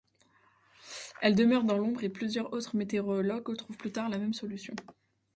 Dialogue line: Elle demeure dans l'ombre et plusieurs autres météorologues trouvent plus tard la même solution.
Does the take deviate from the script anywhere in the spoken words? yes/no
no